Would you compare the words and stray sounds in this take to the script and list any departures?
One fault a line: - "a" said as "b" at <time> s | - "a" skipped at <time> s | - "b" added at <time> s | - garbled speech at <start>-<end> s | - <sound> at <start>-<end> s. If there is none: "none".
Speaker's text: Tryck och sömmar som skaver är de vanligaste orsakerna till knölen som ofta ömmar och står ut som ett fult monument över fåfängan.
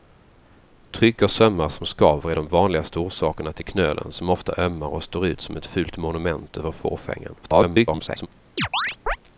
- garbled speech at 7.4-8.3 s
- chirp at 8.6-9.2 s